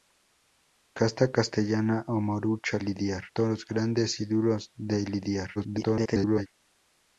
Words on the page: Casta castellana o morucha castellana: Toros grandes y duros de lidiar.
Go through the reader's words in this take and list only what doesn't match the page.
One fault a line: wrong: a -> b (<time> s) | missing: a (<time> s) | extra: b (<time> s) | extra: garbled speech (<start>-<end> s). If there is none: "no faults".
wrong: castellana -> lidiar (2.8 s)
extra: garbled speech (5.5-6.5 s)